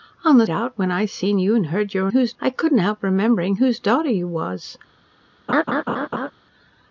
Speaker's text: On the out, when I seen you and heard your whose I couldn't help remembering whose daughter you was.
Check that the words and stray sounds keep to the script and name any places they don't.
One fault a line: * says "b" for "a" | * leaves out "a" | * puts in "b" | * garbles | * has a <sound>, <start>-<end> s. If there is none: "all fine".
* has a laugh, 5.5-6.3 s